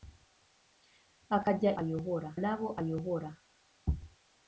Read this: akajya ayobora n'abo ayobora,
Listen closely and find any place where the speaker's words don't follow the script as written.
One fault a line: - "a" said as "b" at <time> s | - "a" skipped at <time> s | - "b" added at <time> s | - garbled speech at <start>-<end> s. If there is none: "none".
none